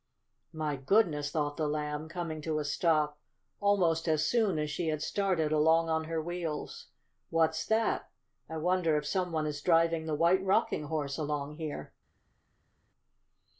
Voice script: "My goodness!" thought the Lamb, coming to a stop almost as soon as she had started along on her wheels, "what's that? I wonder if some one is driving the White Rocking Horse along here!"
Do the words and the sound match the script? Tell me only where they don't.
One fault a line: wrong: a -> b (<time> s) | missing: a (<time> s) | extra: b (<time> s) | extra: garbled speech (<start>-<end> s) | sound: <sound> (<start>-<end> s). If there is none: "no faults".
no faults